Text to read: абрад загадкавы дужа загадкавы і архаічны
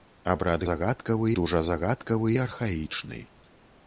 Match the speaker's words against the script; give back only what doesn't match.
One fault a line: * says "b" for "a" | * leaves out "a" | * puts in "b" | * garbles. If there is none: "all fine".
all fine